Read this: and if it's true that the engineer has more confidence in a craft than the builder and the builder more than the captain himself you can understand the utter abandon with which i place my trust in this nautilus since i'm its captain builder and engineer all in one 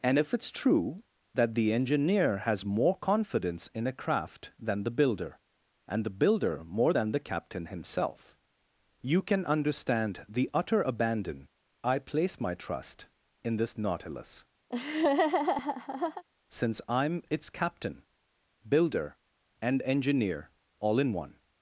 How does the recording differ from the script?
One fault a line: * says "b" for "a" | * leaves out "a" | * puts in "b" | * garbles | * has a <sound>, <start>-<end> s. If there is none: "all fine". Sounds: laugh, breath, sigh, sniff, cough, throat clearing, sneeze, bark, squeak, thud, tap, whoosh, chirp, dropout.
* leaves out "with which"
* has a laugh, 14.7-16.2 s